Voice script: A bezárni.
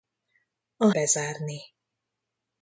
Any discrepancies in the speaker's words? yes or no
no